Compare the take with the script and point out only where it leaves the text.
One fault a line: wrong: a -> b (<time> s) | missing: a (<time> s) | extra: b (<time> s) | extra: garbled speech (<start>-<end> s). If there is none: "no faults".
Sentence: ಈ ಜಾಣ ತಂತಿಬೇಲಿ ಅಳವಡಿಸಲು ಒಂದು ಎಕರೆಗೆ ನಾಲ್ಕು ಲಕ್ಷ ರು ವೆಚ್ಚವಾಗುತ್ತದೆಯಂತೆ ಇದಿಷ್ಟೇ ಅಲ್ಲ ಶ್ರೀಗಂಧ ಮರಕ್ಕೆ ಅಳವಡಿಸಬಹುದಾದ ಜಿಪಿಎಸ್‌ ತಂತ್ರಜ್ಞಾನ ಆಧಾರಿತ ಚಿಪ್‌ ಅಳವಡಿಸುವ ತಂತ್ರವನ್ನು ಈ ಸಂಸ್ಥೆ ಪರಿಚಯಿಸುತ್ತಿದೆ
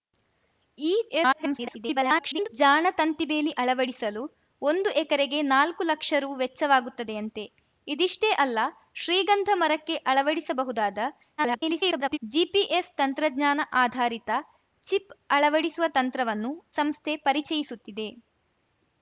extra: garbled speech (1.1-2.5 s)
extra: garbled speech (11.4-12.2 s)
missing: ಈ (16.5 s)